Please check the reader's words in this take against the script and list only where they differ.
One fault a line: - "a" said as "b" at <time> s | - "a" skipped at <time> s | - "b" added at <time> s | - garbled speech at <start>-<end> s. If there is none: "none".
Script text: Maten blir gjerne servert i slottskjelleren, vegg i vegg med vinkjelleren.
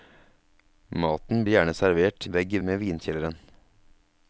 - "blir" skipped at 1.4 s
- "i slottskjelleren" skipped at 2.3 s
- "vegg" skipped at 2.6 s